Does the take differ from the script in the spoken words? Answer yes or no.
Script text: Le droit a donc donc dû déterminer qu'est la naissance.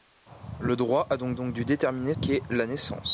no